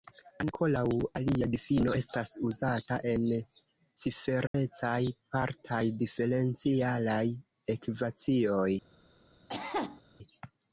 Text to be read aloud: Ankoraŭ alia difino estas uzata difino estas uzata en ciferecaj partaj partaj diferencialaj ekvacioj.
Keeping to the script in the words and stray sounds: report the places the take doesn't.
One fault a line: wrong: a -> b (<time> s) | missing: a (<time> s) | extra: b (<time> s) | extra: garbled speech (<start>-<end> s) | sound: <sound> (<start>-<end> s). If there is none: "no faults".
missing: difino estas uzata (3.0 s)
sound: dropout (4.5-4.5 s)
missing: partaj (5.8 s)
sound: cough (9.5-10.0 s)